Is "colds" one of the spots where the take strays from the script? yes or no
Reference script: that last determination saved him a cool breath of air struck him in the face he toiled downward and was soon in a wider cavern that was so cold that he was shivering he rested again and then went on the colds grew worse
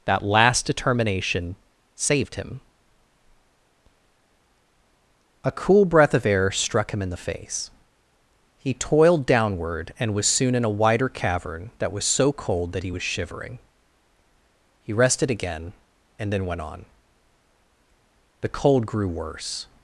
yes